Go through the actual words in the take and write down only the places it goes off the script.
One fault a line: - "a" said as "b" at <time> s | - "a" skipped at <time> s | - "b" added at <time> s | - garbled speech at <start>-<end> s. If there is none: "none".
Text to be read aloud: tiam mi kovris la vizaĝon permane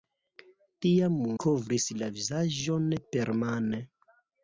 - "mi" skipped at 1.2 s